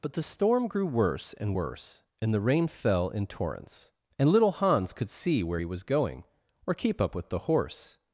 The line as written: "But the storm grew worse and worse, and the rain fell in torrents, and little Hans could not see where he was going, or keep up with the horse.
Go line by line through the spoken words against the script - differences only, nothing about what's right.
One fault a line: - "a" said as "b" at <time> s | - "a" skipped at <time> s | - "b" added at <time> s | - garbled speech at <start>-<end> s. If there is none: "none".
- "not" skipped at 5.1 s